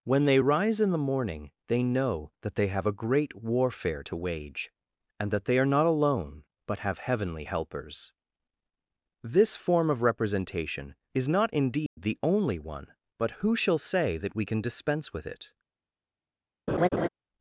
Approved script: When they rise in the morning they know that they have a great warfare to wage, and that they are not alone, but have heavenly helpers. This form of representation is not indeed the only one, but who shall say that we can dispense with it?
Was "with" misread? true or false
false